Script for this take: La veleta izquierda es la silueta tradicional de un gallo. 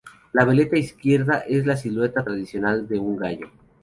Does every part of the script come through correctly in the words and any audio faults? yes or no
yes